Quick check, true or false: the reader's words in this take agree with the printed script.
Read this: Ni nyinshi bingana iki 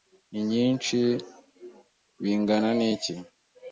true